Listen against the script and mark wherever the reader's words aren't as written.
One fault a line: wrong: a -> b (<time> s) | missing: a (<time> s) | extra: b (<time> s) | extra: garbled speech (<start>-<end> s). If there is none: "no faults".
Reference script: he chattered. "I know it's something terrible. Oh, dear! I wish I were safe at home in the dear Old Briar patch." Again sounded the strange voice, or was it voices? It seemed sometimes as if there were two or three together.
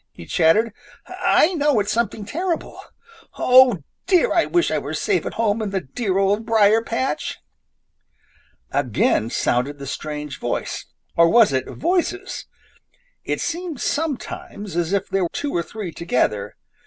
missing: were (15.2 s)